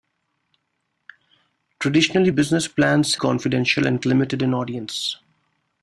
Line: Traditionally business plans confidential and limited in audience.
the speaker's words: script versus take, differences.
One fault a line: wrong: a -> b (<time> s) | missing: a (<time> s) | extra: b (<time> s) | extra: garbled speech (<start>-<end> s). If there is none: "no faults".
no faults